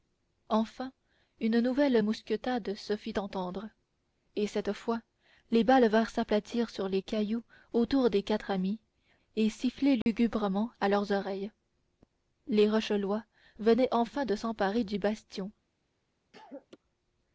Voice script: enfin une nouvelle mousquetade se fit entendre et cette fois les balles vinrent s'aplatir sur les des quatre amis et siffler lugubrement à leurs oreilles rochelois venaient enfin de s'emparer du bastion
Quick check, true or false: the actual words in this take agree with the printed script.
false